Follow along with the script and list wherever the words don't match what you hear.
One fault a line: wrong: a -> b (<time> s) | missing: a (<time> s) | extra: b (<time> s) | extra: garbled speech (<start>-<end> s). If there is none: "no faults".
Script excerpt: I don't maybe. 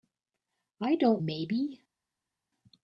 no faults